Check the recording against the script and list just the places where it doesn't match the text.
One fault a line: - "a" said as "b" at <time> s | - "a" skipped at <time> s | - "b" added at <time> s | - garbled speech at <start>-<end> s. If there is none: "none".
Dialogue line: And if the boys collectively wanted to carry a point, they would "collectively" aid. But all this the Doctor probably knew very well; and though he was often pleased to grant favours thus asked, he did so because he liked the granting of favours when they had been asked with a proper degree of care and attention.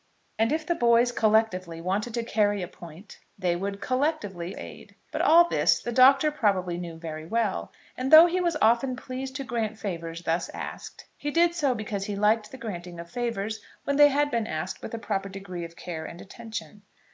none